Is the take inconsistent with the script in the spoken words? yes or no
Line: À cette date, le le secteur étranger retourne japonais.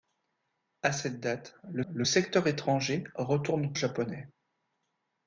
no